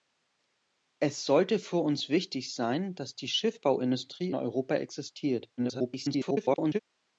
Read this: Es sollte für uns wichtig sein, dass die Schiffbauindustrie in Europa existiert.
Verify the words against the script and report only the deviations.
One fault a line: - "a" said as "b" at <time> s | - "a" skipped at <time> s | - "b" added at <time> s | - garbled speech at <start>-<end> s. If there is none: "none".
- "in" skipped at 4.3 s
- garbled speech at 5.6-6.8 s